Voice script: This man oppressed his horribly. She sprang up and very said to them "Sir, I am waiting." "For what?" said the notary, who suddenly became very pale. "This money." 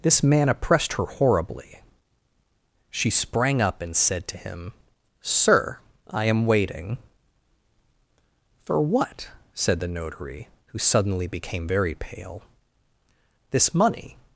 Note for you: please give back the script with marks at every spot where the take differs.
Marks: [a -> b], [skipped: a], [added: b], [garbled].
This man oppressed [his -> her] horribly. She sprang up and [skipped: very] said to [them -> him] "Sir, I am waiting." "For what?" said the notary, who suddenly became very pale. "This money."